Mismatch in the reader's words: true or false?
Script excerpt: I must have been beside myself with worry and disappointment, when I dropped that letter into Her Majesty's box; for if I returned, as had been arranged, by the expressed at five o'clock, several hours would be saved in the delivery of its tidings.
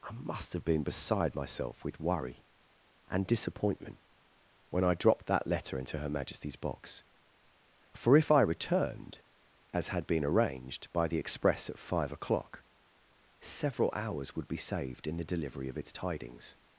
true